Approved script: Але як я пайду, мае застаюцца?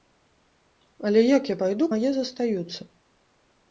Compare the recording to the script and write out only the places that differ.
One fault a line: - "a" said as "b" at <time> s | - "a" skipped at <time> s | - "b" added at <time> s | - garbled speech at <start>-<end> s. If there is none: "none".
none